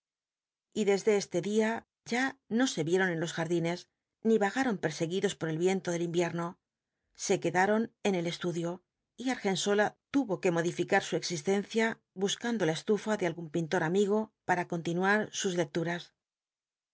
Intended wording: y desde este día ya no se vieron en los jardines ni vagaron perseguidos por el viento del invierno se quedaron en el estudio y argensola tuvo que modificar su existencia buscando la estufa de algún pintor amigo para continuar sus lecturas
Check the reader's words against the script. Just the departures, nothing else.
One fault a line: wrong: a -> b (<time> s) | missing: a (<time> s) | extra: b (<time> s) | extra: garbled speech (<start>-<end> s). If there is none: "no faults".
no faults